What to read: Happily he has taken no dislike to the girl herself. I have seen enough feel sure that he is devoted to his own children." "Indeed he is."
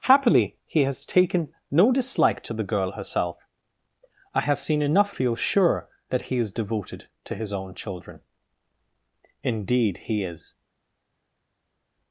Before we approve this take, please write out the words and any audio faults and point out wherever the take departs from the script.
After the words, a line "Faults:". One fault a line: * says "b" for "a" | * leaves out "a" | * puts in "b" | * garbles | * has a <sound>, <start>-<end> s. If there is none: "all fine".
Happily he has taken no dislike to the girl herself. I have seen enough feel sure that he is devoted to his own children." "Indeed he is."
Faults:
all fine